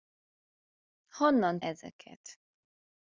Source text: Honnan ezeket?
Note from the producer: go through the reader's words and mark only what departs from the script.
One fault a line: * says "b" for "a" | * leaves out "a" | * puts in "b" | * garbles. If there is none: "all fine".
all fine